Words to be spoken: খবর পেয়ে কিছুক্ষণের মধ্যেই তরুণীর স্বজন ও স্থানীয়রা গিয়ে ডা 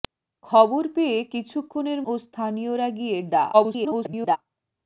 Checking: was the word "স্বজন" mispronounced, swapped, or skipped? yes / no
yes